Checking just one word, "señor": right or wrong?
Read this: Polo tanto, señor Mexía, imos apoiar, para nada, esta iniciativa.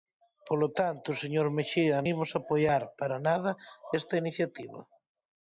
right